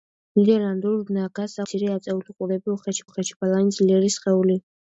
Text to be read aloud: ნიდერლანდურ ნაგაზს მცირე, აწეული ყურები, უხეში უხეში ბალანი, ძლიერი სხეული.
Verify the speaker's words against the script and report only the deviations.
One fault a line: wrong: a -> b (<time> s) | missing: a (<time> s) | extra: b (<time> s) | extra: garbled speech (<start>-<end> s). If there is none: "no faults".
no faults